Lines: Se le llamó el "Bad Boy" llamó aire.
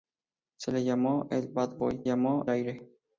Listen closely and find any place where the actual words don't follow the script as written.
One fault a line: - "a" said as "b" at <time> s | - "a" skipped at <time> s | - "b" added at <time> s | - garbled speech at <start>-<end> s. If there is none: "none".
none